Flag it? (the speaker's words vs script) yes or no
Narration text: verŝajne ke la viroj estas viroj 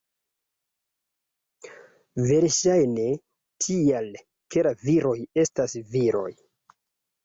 yes